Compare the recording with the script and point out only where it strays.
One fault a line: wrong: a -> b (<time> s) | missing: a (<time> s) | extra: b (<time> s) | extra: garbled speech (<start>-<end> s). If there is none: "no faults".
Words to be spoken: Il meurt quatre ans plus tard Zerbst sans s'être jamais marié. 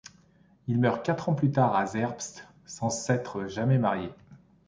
extra: à (1.8 s)